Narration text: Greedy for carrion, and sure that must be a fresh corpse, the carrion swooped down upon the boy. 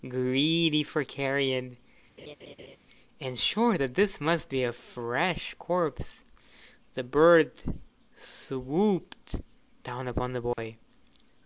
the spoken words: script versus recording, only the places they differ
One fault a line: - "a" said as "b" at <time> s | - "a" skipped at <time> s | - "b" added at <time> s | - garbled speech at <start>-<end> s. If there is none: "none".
- "this" added at 3.9 s
- "carrion" said as "bird" at 7.0 s